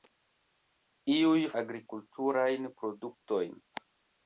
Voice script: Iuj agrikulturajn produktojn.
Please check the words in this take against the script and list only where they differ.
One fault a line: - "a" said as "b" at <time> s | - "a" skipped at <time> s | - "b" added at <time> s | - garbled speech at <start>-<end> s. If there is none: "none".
none